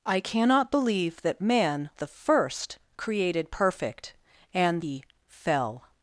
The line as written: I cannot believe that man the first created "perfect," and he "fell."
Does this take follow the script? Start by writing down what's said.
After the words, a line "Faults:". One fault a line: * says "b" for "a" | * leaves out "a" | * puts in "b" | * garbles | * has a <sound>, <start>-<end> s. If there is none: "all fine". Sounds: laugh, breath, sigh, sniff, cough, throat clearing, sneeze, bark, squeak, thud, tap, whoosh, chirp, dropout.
I cannot believe that man the first created "perfect," and he "fell."
Faults:
all fine